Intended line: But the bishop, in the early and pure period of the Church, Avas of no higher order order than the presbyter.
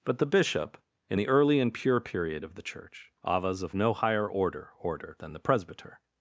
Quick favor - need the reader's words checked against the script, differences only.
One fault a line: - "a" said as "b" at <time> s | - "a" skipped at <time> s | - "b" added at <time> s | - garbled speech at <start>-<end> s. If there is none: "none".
none